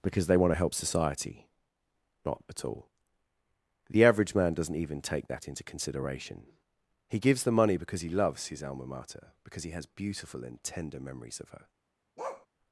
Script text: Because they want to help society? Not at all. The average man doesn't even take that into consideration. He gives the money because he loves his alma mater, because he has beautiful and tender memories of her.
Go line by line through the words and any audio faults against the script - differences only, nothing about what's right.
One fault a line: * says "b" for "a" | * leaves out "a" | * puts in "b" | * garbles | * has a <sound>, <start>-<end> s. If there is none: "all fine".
* has a bark, 12.2-12.5 s